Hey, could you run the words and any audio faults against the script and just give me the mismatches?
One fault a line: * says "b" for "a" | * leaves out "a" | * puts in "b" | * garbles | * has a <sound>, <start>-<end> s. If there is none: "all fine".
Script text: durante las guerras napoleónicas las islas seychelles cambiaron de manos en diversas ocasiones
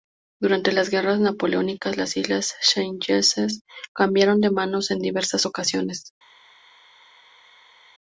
all fine